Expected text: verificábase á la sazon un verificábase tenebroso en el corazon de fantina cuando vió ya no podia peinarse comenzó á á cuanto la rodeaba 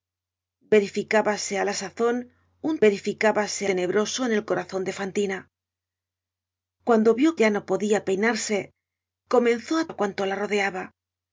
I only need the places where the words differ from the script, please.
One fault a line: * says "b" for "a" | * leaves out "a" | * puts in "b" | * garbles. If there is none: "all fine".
all fine